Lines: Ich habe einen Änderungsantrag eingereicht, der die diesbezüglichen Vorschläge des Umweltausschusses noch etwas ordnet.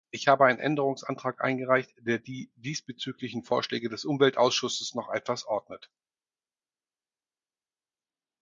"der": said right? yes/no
yes